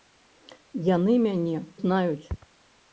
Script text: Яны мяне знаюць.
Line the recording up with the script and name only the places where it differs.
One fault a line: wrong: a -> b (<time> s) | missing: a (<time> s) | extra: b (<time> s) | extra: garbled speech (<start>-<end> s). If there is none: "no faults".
no faults